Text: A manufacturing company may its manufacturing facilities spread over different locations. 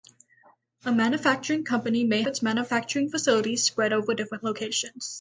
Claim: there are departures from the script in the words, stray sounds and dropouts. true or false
false